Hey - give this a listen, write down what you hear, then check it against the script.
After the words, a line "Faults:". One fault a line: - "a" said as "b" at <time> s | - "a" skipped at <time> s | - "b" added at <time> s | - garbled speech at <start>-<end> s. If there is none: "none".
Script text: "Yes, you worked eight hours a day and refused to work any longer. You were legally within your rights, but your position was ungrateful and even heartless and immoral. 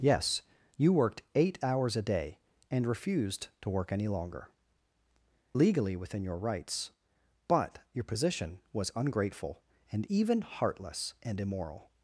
"Yes, you worked eight hours a day and refused to work any longer. Legally within your rights, but your position was ungrateful and even heartless and immoral.
Faults:
- "You were" skipped at 4.5 s